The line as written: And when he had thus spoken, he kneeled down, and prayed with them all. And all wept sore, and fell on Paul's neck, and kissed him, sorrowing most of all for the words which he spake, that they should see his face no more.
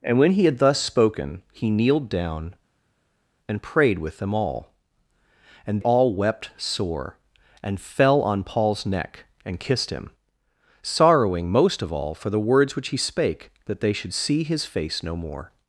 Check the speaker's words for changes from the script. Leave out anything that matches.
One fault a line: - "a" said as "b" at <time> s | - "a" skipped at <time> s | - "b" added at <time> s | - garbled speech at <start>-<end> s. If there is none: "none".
none